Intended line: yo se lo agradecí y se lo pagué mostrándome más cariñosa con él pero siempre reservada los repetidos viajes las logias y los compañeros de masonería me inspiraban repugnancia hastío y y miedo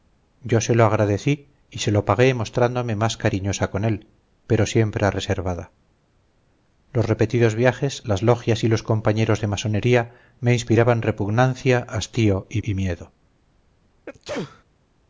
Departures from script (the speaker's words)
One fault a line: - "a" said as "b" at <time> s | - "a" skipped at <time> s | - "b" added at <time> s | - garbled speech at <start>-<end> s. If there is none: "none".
none